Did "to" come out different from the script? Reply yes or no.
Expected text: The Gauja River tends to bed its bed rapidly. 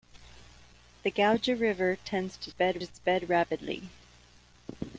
no